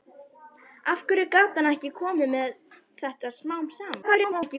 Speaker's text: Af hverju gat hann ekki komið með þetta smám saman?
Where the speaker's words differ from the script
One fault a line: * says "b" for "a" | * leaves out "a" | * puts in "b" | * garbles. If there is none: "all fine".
* garbles